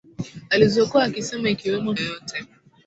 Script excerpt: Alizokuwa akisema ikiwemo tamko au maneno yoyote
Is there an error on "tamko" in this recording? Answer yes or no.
yes